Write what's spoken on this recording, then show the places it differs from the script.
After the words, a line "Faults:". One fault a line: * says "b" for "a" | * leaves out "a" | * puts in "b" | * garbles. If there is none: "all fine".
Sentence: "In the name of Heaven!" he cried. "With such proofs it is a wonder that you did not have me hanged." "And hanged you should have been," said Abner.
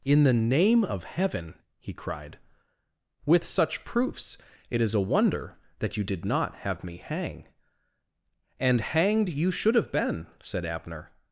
"In the name of Heaven!" he cried. "With such proofs it is a wonder that you did not have me hang." "And hanged you should have been," said Abner.
Faults:
* says "hang" for "hanged"